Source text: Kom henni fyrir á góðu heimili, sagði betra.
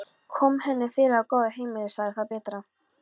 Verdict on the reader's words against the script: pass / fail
fail